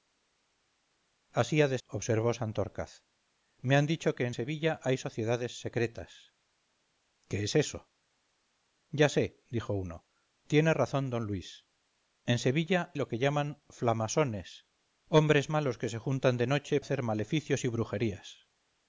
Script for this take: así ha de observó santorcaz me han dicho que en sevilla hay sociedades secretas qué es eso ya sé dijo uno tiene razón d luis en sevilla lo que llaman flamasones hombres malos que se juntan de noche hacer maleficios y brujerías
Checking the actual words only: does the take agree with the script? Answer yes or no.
yes